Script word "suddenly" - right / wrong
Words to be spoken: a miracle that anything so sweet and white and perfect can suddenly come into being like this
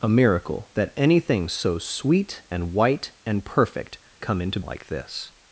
wrong